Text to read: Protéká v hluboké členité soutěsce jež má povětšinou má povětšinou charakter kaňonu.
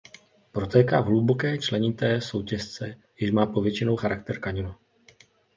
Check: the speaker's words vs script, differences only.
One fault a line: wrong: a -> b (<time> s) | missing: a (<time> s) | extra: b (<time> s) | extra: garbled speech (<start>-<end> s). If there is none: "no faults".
missing: má povětšinou (4.0 s)